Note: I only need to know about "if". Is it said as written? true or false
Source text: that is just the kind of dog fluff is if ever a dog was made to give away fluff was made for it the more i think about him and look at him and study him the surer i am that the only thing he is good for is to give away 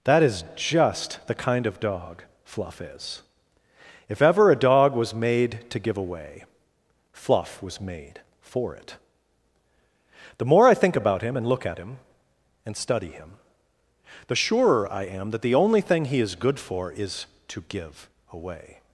true